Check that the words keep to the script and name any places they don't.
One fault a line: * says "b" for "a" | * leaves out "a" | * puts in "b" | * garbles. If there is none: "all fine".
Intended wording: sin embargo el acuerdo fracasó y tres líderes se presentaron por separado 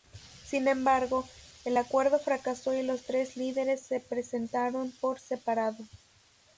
* puts in "los"